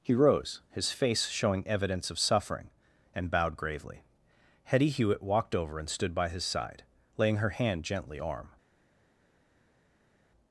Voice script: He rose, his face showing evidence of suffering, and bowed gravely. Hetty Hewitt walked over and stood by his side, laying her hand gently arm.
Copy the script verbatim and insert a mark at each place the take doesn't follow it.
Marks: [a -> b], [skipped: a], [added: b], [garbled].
He rose, his face showing evidence of suffering, and bowed gravely. Hetty Hewitt walked over and stood by his side, laying her hand gently arm.